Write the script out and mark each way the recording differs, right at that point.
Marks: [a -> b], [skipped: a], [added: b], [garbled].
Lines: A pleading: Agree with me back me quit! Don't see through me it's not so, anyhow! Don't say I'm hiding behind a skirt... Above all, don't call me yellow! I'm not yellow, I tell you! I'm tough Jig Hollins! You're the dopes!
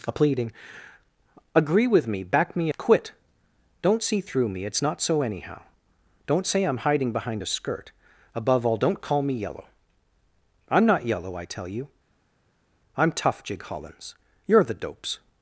A pleading: Agree with me back me quit! Don't see through me it's not so, anyhow! Don't say I'm hiding behind a skirt... Above all, don't call me yellow! I'm not yellow, I tell you! I'm tough Jig Hollins! You're the dopes!